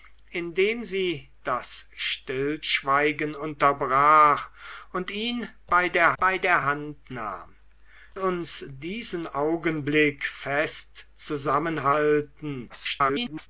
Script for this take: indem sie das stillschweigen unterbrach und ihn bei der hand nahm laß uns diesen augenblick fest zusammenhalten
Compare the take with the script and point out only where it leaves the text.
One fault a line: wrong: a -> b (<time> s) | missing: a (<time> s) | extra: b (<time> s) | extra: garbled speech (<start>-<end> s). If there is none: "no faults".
extra: bei der (6.2 s)
missing: laß (7.5 s)
extra: garbled speech (12.7-13.5 s)